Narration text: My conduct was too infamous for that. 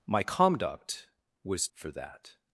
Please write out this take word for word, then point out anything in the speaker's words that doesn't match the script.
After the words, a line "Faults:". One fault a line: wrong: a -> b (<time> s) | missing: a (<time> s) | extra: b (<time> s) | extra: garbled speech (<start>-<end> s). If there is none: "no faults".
My conduct was for that.
Faults:
missing: too infamous (1.7 s)